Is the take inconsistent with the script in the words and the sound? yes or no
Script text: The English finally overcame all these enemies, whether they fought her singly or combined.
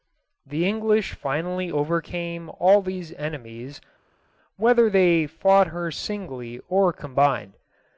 no